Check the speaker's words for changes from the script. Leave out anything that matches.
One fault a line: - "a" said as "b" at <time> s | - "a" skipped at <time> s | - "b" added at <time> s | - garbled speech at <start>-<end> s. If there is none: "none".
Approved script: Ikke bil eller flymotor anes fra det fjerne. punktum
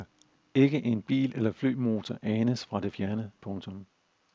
- "en" added at 0.8 s